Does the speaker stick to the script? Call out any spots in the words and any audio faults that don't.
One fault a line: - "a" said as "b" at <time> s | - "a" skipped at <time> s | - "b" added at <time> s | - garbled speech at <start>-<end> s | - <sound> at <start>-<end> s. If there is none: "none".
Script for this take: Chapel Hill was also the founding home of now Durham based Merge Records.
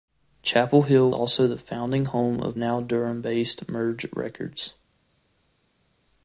- "was" skipped at 1.1 s